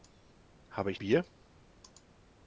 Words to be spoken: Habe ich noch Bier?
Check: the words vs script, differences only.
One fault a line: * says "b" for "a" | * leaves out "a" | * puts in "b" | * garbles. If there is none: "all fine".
* leaves out "noch"